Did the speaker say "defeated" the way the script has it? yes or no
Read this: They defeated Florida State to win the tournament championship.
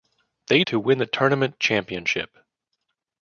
no